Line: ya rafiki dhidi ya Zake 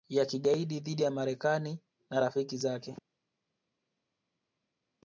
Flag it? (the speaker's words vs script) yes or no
yes